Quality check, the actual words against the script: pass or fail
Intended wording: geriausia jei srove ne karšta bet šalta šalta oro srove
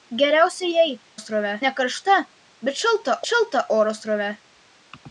pass